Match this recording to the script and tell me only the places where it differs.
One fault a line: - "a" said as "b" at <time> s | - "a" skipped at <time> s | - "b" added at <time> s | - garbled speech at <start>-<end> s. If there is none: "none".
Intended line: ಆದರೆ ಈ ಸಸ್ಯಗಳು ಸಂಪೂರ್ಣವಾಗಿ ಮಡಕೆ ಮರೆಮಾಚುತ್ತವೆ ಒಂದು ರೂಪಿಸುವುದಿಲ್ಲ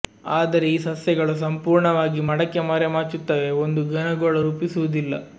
- "ಘನ ಗೋಳ" added at 3.9 s